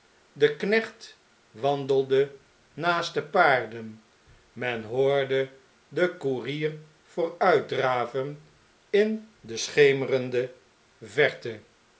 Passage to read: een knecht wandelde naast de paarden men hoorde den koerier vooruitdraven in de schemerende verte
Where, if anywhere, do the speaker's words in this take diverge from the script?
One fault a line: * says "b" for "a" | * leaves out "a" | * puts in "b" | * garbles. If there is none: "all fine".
* says "de" for "een"